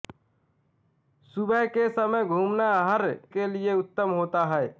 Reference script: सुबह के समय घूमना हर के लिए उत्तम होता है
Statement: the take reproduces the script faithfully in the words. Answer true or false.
true